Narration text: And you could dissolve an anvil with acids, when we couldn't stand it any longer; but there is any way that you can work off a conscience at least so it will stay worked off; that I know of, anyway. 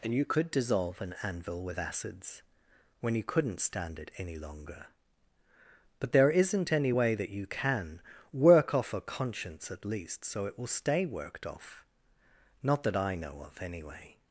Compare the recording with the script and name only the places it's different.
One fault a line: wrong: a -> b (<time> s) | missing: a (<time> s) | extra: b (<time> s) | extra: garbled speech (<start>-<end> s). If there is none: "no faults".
wrong: we -> you (3.1 s)
wrong: is -> isn't (6.3 s)
extra: not (12.6 s)